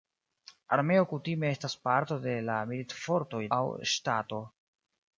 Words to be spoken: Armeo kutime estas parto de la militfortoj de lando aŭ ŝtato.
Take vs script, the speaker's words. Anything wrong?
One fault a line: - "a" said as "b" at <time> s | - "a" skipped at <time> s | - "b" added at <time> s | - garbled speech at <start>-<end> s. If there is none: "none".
- "de lando" skipped at 3.5 s